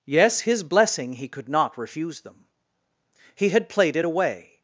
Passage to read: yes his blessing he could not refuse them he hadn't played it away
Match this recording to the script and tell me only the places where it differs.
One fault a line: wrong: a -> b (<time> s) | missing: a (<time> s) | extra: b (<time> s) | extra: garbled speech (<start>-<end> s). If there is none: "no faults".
wrong: hadn't -> had (3.5 s)